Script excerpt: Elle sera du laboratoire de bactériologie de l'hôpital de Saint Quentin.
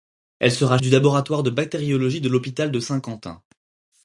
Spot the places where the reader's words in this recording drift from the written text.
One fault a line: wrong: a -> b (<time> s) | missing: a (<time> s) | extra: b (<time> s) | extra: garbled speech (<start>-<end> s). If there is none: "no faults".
no faults